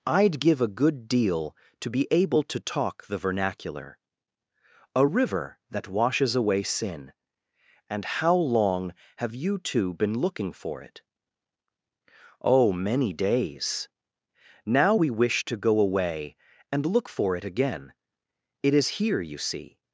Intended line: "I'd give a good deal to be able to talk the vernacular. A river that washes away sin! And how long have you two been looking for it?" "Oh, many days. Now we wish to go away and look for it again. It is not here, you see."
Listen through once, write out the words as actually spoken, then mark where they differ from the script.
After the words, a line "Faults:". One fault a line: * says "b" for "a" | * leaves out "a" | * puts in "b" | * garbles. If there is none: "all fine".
"I'd give a good deal to be able to talk the vernacular. A river that washes away sin! And how long have you two been looking for it?" "Oh, many days. Now we wish to go away and look for it again. It is here, you see."
Faults:
* leaves out "not"